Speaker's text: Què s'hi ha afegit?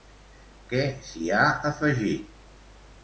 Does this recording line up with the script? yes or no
yes